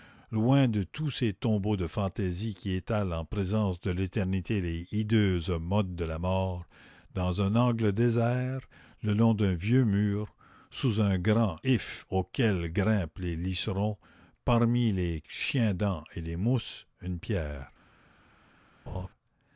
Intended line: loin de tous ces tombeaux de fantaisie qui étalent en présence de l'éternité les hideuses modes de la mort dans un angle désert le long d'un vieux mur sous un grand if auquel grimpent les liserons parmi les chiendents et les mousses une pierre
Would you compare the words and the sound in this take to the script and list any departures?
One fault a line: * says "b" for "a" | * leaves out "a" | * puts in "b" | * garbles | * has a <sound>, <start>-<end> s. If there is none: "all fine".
* has a laugh, 18.9-19.1 s